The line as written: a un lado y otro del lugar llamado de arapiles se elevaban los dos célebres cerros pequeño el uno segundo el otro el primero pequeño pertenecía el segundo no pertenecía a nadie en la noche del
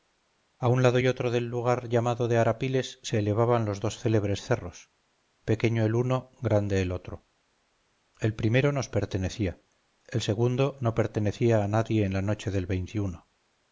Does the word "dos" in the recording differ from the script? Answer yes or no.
no